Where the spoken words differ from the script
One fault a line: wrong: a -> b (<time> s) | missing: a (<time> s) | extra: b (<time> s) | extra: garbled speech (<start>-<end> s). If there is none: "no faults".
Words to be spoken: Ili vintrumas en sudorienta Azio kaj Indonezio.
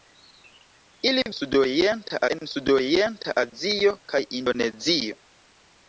wrong: vintrumas -> sudorienta (1.4 s)